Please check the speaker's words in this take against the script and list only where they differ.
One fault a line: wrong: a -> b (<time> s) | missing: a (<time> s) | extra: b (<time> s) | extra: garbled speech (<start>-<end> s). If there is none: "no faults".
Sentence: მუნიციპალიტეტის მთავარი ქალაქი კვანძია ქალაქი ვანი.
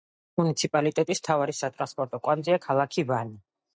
wrong: ქალაქი -> სატრანსპორტო (1.6 s)